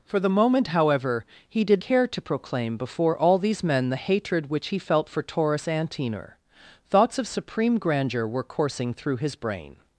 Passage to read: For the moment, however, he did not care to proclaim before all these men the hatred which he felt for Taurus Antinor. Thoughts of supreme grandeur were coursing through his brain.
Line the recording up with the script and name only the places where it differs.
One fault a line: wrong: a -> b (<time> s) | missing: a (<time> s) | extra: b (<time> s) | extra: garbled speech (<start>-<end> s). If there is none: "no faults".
missing: not (1.8 s)